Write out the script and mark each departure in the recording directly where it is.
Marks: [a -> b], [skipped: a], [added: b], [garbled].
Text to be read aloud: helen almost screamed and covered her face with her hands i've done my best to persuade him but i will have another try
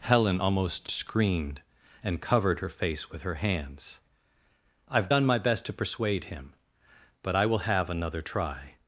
helen almost screamed and covered her face with her hands i've done my best to persuade him but i will have another try